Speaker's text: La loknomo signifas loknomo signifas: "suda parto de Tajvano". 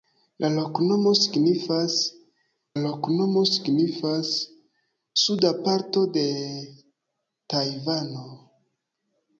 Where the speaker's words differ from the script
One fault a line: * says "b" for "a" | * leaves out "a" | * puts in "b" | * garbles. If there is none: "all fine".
all fine